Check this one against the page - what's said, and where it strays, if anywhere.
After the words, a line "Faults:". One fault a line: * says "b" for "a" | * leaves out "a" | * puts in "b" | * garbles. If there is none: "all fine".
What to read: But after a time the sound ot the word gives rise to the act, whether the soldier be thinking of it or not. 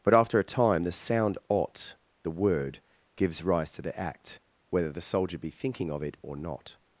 But after a time the sound ot the word gives rise to the act, whether the soldier be thinking of it or not.
Faults:
all fine